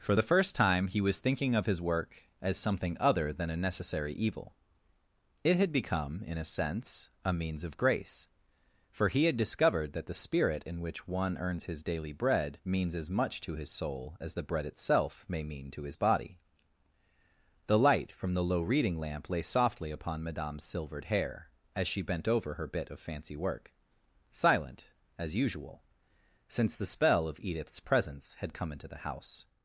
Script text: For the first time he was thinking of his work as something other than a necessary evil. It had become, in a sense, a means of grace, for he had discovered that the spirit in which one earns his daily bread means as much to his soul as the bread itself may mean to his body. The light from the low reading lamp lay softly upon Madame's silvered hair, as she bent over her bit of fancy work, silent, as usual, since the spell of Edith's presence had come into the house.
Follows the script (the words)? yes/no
yes